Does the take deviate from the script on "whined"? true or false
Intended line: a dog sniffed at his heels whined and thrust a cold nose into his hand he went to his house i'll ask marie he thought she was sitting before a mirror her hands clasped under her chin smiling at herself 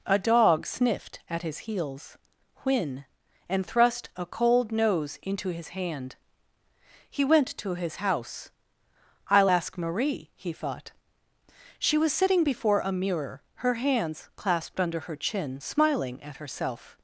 true